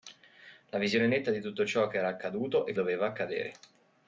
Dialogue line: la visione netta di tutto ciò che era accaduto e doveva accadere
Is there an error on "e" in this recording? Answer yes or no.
no